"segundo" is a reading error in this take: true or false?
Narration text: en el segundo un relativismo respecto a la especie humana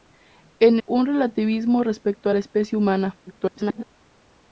true